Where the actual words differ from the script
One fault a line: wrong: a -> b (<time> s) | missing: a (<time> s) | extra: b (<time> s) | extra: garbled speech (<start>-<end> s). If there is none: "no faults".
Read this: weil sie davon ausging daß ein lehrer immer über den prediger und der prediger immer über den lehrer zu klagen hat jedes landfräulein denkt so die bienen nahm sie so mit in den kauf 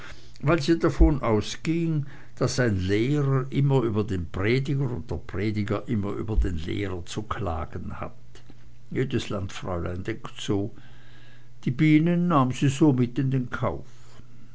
no faults